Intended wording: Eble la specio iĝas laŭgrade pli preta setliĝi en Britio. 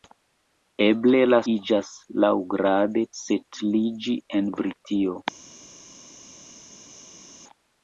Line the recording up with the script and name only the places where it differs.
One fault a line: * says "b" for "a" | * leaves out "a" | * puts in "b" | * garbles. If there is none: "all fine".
* leaves out "specio"
* leaves out "pli preta"